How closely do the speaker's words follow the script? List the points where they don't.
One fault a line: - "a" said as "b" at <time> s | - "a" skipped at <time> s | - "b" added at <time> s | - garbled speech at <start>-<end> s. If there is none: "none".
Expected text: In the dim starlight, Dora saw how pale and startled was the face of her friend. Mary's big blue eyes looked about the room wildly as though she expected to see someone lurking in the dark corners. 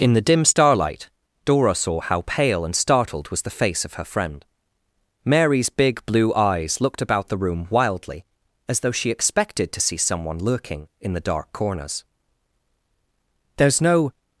- "There's no" added at 13.6 s